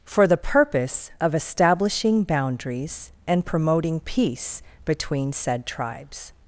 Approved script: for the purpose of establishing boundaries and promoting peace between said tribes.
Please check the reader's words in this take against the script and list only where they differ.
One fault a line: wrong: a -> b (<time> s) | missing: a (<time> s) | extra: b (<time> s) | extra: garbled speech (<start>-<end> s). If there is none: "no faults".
no faults